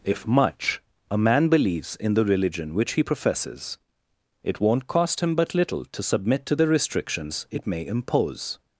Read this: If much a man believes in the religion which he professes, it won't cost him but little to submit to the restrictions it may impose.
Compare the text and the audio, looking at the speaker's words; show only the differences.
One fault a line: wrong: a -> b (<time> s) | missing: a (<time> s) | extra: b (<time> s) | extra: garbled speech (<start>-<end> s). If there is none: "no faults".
no faults